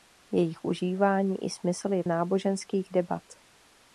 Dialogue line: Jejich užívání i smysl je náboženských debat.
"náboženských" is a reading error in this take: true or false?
false